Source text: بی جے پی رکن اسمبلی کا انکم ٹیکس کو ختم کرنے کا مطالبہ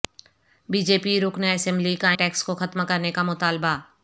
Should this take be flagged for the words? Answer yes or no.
yes